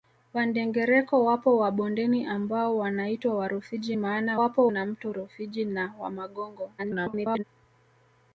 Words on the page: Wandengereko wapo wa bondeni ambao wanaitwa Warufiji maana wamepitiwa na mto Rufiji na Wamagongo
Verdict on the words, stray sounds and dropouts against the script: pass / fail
fail